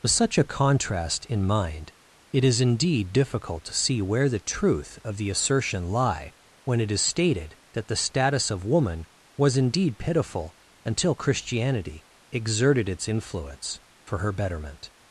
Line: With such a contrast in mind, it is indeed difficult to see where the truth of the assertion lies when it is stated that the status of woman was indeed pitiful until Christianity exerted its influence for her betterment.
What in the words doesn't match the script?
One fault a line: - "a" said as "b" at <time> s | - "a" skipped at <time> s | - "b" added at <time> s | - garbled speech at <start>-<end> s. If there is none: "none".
- "lies" said as "lie" at 5.9 s